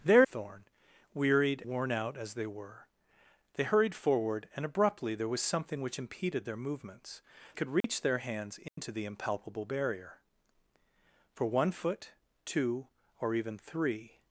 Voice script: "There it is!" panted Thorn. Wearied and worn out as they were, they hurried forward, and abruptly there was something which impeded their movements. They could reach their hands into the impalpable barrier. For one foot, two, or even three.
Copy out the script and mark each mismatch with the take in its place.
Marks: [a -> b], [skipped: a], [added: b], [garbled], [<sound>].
"There [skipped: it is!" panted] Thorn. Wearied [skipped: and] worn out as they were, they hurried forward, and abruptly there was something which impeded their movements. [skipped: They] could reach [dropout] their hands into [dropout] the impalpable barrier. For one foot, two, or even three.